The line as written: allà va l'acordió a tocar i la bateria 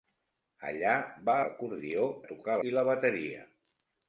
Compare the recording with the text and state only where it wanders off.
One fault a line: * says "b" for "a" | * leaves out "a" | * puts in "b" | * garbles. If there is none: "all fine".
all fine